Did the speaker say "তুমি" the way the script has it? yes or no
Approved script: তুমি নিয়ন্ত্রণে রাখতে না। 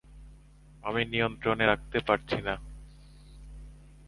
no